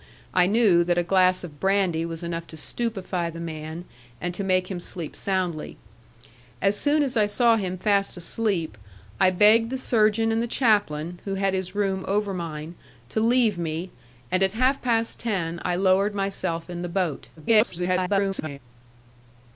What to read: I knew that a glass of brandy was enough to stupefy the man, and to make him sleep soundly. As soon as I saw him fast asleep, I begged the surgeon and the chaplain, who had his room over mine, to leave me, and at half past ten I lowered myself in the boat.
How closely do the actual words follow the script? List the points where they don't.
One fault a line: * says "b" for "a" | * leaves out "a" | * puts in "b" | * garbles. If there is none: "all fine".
* garbles